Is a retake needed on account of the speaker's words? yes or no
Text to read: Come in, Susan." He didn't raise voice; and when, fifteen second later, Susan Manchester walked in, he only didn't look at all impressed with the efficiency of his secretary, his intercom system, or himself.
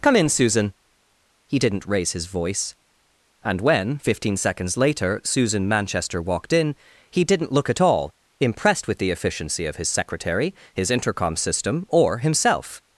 yes